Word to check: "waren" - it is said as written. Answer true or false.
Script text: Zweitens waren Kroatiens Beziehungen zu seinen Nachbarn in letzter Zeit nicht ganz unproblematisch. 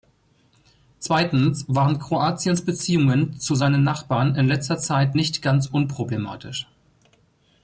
true